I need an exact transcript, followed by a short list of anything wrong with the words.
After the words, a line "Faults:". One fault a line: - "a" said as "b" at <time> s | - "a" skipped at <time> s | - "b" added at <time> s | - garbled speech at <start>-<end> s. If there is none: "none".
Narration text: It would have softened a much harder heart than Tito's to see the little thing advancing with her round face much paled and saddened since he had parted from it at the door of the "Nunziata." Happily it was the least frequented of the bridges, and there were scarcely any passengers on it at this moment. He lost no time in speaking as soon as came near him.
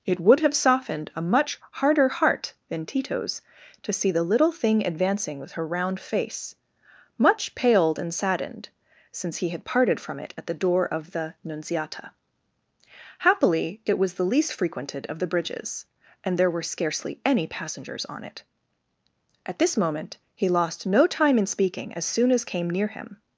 It would have softened a much harder heart than Tito's to see the little thing advancing with her round face much paled and saddened since he had parted from it at the door of the "Nunziata." Happily it was the least frequented of the bridges, and there were scarcely any passengers on it at this moment. He lost no time in speaking as soon as came near him.
Faults:
none